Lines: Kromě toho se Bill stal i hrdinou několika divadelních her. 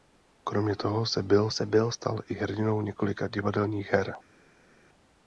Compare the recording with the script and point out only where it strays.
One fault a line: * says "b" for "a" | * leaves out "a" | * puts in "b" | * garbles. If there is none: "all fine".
* puts in "se Bill"